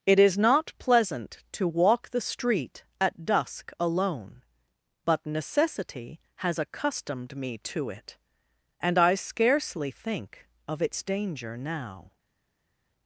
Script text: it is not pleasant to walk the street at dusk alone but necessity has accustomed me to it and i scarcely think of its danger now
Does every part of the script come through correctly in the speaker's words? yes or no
yes